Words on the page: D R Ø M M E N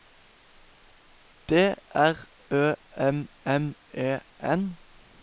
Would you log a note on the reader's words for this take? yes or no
no